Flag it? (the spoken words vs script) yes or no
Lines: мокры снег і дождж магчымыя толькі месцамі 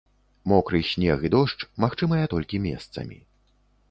no